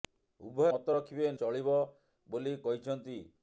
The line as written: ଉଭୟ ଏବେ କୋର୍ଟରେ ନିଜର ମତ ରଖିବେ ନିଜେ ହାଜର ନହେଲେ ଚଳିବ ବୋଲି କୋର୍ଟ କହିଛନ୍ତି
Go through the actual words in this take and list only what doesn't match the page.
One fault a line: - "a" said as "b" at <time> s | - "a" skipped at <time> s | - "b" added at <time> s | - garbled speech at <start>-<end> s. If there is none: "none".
- "ଏବେ କୋର୍ଟରେ ନିଜର" skipped at 0.7 s
- "ନିଜେ ହାଜର ନହେଲେ" skipped at 1.3 s
- "କୋର୍ଟ" skipped at 2.5 s